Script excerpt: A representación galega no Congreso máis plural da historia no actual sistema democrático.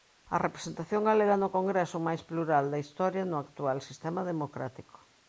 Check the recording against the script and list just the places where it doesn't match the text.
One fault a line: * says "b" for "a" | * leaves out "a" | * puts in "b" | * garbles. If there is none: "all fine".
all fine